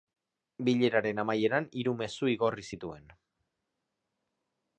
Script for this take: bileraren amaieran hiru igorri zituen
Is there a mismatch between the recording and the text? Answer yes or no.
yes